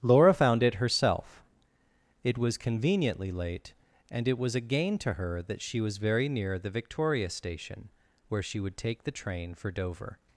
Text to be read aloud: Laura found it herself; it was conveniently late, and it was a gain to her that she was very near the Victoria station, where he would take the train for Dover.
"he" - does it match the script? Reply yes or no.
no